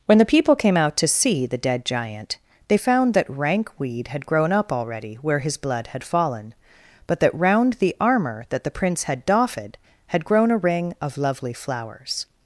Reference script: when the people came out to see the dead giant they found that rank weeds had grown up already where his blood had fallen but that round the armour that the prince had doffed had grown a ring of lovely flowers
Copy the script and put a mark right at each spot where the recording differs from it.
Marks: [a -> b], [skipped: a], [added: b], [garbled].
when the people came out to see the dead giant they found that rank [weeds -> weed] had grown up already where his blood had fallen but that round the armour that the prince had doffed had grown a ring of lovely flowers